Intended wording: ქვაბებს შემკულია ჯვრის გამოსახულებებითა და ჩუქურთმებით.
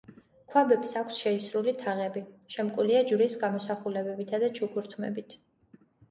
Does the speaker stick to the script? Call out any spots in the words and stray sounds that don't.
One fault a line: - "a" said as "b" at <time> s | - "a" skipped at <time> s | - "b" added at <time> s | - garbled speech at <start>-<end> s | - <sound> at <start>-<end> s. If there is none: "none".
- "აქვს შეისრული თაღები" added at 1.0 s